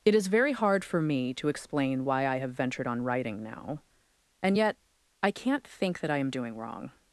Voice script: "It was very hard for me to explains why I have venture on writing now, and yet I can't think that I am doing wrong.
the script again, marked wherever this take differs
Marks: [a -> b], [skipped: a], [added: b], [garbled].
"It [was -> is] very hard for me to [explains -> explain] why I have [venture -> ventured] on writing now, and yet I can't think that I am doing wrong.